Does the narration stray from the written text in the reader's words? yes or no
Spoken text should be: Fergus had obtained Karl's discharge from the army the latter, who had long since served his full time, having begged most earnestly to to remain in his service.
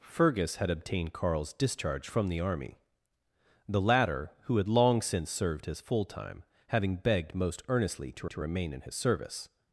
no